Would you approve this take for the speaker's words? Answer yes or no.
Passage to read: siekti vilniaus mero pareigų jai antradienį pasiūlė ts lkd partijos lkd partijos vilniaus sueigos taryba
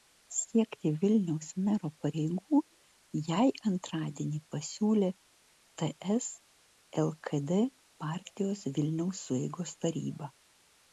no